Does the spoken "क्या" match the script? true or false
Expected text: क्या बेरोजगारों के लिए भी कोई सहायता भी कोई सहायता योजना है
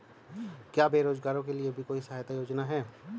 true